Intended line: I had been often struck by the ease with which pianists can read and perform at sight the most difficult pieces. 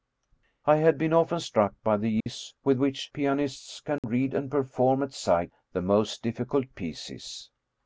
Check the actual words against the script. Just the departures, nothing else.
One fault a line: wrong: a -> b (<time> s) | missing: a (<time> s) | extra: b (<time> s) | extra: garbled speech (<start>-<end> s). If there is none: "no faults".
no faults